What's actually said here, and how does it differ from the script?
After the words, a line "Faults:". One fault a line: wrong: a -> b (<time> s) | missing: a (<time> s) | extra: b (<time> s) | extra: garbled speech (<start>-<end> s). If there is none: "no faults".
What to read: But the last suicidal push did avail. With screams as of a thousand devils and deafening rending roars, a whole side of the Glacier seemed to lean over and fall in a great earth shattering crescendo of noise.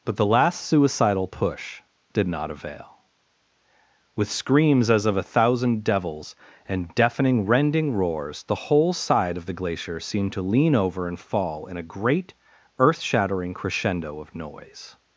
But the last suicidal push did not avail. With screams as of a thousand devils and deafening rending roars, the whole side of the Glacier seemed to lean over and fall in a great earth shattering crescendo of noise.
Faults:
extra: not (2.2 s)
wrong: a -> the (8.4 s)